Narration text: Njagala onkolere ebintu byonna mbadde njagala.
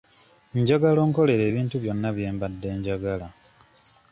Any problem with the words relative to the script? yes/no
yes